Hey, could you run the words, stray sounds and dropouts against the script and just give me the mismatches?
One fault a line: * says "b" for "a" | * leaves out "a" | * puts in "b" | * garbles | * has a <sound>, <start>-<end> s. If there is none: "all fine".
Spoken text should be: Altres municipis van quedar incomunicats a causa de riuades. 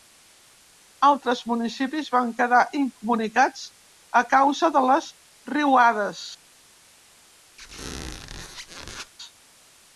* puts in "les"
* has a squeak, 7.6-9.1 s